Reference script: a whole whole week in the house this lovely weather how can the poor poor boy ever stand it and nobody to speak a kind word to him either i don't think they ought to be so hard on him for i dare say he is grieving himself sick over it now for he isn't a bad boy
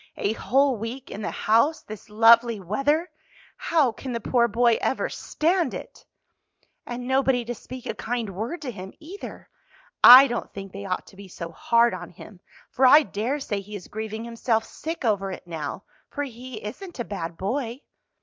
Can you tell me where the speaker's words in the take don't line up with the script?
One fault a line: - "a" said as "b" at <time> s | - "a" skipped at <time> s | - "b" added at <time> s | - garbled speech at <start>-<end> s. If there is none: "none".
- "whole" skipped at 0.8 s
- "poor" skipped at 4.5 s